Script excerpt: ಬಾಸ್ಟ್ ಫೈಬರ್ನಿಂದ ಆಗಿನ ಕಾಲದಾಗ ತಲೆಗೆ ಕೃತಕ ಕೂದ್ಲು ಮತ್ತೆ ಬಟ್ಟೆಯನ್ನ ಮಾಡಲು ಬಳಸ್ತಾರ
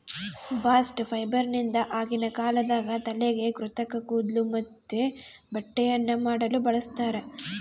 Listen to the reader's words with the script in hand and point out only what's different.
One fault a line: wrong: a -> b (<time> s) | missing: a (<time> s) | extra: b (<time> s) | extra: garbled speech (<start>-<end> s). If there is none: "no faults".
no faults